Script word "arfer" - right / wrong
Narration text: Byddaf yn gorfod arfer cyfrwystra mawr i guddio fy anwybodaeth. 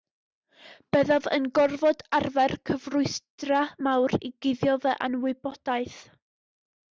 right